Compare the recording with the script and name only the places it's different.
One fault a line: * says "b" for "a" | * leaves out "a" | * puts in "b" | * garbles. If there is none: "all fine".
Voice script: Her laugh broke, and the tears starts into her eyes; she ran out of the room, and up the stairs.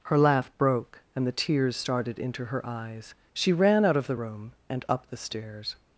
* says "started" for "starts"